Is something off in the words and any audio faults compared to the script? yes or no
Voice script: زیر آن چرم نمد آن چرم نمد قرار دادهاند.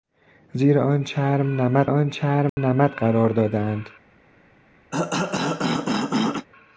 yes